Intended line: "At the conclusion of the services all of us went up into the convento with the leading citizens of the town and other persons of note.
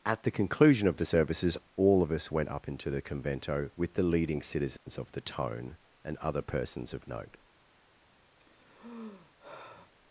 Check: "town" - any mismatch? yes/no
yes